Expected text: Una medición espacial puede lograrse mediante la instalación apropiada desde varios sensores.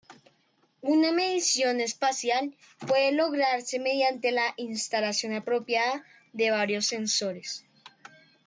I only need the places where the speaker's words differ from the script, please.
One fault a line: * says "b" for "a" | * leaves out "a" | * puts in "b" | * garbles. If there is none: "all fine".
* says "de" for "desde"